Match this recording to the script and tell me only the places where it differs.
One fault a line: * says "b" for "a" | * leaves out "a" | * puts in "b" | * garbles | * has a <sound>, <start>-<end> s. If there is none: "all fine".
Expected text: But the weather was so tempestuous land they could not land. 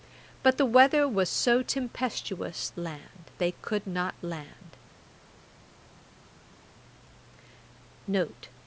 all fine